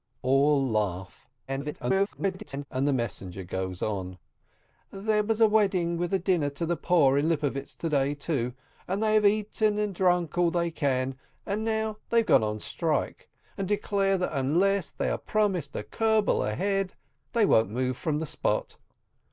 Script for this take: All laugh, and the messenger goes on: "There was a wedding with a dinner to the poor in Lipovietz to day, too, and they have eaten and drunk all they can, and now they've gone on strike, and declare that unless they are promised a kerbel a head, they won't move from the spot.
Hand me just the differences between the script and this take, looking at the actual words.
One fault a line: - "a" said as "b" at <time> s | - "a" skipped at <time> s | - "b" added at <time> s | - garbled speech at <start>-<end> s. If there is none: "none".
- garbled speech at 1.5-2.7 s